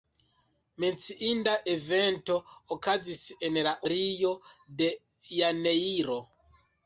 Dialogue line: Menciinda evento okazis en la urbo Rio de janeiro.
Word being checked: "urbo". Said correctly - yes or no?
no